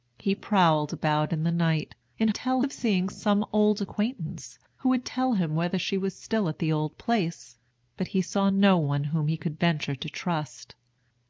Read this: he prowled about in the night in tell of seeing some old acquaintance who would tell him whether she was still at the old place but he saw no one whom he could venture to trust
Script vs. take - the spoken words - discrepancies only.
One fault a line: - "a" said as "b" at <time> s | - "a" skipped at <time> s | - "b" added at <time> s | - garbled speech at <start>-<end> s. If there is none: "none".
none